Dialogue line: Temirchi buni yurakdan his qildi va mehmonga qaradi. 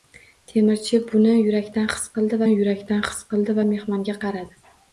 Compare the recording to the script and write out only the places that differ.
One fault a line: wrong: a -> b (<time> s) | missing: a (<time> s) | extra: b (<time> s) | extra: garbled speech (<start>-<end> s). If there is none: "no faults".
extra: yurakdan his qildi (2.5 s)